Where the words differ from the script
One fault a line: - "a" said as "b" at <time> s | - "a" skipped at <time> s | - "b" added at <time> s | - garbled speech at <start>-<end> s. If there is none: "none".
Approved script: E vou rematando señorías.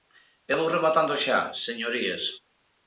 - "xa" added at 1.2 s